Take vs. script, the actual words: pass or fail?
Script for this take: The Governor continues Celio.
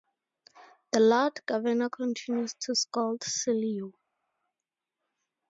fail